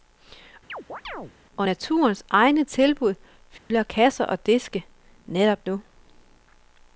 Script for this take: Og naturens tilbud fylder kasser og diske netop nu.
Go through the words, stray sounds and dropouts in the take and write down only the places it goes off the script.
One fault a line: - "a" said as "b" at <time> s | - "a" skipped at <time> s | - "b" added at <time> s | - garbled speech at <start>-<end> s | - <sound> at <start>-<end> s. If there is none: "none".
- chirp at 0.7-1.3 s
- "egne" added at 2.3 s
- dropout at 3.6-3.7 s